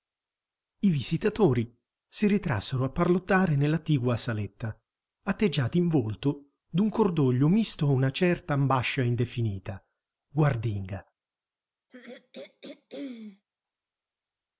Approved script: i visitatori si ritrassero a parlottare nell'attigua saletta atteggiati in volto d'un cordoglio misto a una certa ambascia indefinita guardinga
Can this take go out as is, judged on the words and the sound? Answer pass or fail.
fail